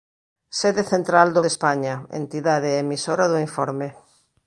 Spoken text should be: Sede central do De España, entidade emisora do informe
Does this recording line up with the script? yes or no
yes